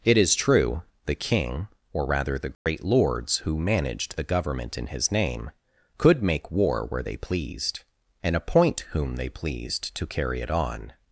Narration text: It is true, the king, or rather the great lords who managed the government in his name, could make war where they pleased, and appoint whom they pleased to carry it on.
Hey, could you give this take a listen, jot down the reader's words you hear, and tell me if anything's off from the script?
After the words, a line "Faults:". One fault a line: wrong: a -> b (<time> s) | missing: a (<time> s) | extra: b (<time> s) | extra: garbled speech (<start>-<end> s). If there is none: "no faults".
It is true, the king, or rather the great lords who managed the government in his name, could make war where they pleased, and appoint whom they pleased to carry it on.
Faults:
no faults